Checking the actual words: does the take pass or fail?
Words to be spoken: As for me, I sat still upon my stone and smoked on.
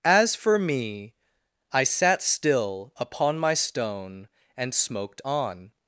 pass